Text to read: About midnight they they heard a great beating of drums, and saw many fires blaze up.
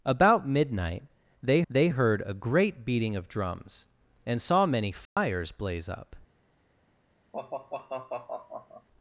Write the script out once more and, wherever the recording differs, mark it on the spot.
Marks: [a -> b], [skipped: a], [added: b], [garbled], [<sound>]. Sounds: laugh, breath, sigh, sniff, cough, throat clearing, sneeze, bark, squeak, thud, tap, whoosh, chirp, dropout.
About midnight they they heard a great beating of drums, and saw many fires [dropout] blaze up. [sigh]